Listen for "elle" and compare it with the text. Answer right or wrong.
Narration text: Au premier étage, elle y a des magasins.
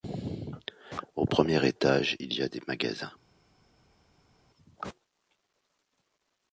wrong